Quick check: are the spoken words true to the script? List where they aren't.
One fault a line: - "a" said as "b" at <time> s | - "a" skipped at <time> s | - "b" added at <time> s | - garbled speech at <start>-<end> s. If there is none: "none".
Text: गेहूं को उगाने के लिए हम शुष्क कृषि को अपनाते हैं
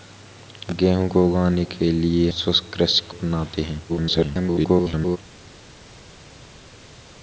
- "हम" skipped at 2.3 s
- "को" skipped at 3.1 s
- garbled speech at 3.9-5.2 s